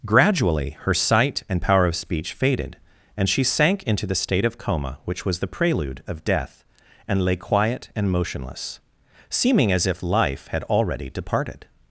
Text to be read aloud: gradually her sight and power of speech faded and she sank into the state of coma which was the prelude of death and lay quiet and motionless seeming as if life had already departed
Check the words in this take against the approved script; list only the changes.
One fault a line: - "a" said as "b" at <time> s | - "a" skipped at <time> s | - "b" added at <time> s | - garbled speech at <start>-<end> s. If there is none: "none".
none